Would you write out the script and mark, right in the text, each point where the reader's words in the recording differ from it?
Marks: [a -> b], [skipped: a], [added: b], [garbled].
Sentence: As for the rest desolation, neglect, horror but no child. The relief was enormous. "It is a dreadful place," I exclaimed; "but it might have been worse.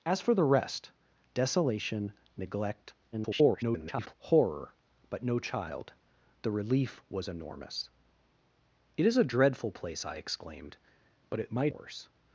As for the rest desolation, neglect, [garbled] horror but no child. The relief was enormous. "It is a dreadful place," I exclaimed; "but it might [skipped: have been] worse.